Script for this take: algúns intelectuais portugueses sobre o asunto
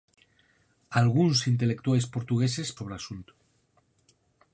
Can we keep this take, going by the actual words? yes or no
yes